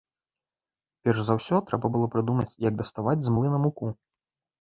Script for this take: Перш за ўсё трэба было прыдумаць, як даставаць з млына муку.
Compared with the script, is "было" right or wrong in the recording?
right